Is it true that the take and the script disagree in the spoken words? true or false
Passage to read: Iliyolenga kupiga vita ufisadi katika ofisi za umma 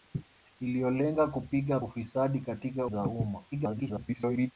true